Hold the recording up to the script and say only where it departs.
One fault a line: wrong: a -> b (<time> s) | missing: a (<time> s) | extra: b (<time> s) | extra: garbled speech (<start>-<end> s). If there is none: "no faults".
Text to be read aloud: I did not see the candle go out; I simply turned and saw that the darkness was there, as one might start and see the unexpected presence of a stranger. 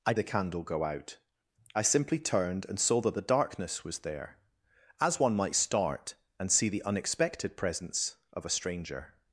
missing: did not see (0.1 s)